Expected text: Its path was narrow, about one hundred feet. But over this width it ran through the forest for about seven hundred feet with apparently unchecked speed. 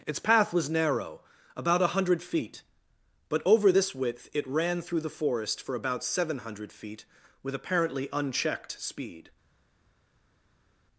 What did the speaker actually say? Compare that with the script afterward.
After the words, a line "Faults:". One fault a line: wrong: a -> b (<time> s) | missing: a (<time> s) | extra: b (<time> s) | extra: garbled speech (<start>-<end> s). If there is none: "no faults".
Its path was narrow, about a hundred feet. But over this width it ran through the forest for about seven hundred feet with apparently unchecked speed.
Faults:
wrong: one -> a (1.8 s)